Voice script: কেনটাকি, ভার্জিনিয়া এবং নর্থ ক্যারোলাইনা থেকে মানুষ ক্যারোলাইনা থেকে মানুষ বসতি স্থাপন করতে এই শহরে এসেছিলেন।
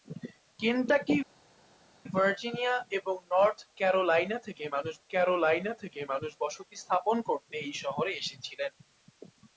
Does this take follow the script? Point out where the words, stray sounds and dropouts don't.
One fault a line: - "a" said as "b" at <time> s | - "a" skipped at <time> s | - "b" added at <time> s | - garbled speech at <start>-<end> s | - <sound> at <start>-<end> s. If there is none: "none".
none